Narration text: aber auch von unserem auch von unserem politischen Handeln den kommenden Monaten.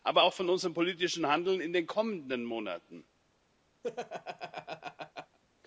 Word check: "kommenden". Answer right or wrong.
right